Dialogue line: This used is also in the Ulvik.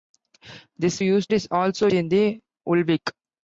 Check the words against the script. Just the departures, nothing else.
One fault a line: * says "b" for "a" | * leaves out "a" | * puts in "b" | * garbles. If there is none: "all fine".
all fine